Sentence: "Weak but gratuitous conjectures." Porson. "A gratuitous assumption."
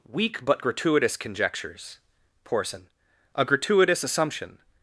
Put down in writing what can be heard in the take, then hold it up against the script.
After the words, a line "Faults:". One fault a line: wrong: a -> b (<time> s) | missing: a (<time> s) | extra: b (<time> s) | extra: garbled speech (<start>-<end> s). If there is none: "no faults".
"Weak but gratuitous conjectures." Porson. "A gratuitous assumption."
Faults:
no faults